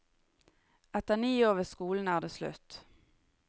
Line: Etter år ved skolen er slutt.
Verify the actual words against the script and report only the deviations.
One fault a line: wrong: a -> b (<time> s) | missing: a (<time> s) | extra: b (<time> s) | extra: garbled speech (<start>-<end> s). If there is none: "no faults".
extra: ni (1.1 s)
extra: det (2.2 s)